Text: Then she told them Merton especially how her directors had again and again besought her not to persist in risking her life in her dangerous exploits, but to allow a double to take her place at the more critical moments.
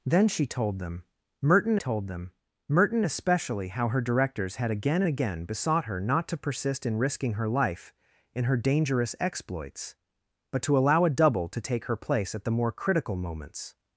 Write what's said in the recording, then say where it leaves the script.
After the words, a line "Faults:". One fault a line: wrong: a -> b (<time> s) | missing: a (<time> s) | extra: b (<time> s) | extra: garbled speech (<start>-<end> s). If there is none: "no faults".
Then she told them Merton told them Merton especially how her directors had again again besought her not to persist in risking her life in her dangerous exploits, but to allow a double to take her place at the more critical moments.
Faults:
extra: told them Merton (1.8 s)
missing: and (5.0 s)